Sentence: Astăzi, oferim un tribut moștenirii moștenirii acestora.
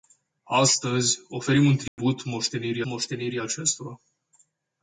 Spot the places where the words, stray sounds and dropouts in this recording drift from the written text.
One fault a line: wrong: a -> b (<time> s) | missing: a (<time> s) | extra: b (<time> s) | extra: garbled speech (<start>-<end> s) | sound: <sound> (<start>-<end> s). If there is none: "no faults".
sound: dropout (1.9-2.0 s)